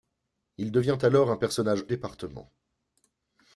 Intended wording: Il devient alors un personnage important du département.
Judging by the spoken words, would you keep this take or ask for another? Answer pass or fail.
fail